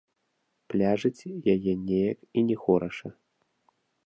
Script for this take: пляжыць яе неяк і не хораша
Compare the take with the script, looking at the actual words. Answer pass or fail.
pass